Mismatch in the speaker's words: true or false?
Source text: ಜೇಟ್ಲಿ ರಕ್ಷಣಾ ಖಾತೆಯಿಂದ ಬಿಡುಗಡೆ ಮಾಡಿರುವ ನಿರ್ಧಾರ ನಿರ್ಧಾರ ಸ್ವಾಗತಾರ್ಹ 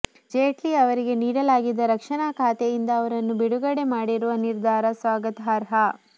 true